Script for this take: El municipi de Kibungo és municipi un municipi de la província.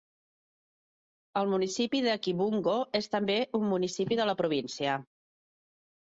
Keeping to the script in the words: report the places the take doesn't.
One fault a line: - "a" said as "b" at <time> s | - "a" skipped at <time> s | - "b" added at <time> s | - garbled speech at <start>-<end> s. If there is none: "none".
- "municipi" said as "també" at 3.2 s